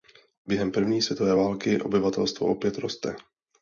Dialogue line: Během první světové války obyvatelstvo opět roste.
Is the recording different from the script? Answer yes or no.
no